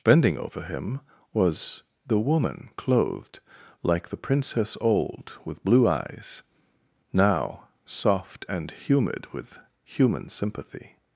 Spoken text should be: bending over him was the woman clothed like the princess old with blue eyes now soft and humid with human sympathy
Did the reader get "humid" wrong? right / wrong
right